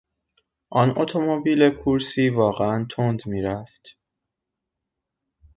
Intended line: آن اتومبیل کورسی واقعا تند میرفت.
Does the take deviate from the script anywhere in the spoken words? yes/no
no